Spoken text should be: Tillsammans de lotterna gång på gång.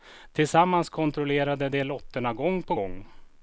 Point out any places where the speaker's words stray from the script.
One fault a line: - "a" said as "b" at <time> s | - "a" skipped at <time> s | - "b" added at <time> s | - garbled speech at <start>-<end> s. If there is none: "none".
- "kontrollerade" added at 0.9 s